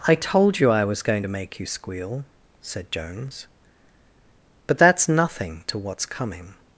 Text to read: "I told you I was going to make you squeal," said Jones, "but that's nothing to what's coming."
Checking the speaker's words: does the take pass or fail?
pass